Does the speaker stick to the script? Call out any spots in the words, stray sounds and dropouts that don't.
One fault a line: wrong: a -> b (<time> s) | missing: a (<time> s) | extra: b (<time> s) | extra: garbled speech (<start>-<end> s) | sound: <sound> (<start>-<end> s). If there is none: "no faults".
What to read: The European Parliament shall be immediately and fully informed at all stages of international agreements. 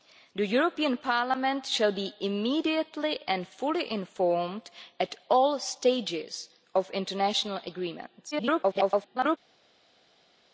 extra: garbled speech (8.3-9.4 s)